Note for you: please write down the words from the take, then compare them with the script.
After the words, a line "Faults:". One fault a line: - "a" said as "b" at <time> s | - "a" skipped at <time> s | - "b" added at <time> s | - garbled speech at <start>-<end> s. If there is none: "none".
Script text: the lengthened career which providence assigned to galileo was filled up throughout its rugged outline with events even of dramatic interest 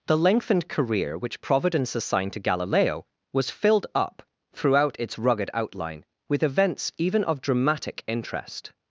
the lengthened career which providence assigned to galileo was filled up throughout its rugged outline with events even of dramatic interest
Faults:
none